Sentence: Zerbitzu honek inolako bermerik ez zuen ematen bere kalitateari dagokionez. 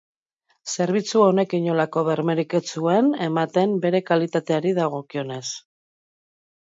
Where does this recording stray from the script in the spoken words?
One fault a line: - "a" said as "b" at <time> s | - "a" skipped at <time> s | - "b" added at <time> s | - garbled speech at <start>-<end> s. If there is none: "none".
none